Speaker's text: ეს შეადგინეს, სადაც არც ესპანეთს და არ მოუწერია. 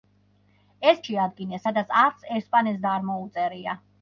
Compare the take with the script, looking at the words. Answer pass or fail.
pass